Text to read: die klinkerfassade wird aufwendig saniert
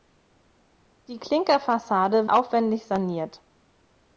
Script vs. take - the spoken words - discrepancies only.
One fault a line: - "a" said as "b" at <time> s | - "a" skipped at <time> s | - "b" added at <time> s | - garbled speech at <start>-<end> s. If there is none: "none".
- "wird" skipped at 2.3 s